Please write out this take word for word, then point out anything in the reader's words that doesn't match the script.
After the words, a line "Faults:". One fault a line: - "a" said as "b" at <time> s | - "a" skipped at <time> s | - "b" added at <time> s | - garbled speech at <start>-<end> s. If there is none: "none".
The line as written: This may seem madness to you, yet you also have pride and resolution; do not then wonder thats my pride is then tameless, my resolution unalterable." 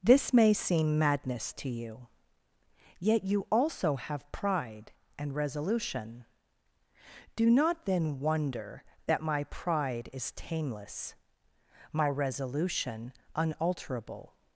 This may seem madness to you, yet you also have pride and resolution; do not then wonder that my pride is tameless, my resolution unalterable."
Faults:
- "thats" said as "that" at 9.1 s
- "then" skipped at 10.3 s